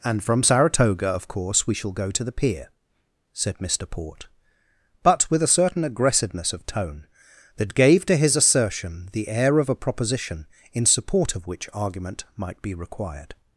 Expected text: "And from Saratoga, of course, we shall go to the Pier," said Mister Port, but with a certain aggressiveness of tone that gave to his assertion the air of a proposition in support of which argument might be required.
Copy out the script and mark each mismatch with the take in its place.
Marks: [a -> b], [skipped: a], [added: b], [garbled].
"And from Saratoga, of course, we shall go to the Pier," said Mister Port, but with a certain aggressiveness of tone that gave to his assertion the air of a proposition in support of which argument might be required.